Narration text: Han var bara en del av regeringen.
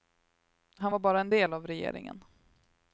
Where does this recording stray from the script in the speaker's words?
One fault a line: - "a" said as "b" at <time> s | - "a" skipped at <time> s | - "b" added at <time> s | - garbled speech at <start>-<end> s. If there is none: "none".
none